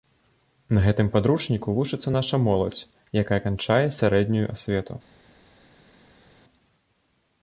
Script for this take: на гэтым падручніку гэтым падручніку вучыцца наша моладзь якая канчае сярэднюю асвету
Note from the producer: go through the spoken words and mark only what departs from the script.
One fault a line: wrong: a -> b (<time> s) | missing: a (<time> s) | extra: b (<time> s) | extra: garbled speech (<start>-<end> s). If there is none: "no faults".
missing: гэтым падручніку (1.8 s)